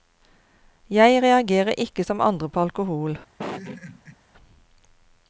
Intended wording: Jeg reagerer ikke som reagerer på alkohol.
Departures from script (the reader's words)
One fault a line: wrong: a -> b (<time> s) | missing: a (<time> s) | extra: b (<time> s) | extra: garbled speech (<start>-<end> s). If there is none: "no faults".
wrong: reagerer -> andre (2.2 s)